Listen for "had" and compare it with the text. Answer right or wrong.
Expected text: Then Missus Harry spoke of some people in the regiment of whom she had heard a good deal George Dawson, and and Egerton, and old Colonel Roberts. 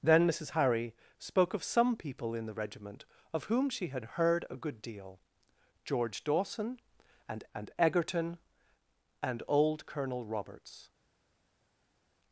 right